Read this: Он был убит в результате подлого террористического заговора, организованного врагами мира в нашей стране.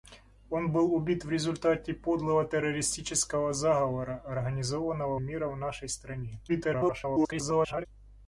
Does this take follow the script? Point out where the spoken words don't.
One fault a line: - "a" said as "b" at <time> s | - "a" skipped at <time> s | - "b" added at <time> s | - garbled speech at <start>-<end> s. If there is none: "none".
- "врагами" skipped at 5.2 s
- garbled speech at 6.5-7.9 s